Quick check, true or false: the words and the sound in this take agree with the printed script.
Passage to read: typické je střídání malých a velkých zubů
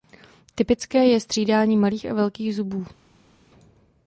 true